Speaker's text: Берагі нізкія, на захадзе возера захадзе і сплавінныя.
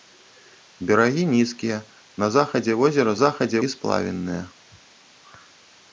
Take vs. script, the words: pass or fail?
pass